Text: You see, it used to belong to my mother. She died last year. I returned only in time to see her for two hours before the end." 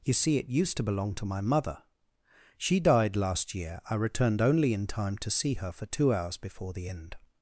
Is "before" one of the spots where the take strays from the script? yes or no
no